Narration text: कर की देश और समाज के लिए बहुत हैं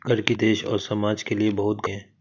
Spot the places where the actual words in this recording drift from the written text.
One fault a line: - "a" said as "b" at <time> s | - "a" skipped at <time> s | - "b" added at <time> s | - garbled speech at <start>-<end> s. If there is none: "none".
none